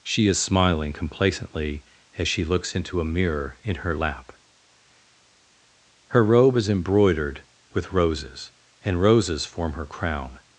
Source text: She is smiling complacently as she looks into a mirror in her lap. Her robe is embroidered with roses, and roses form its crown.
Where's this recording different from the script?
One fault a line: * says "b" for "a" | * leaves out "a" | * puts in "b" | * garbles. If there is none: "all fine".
* says "her" for "its"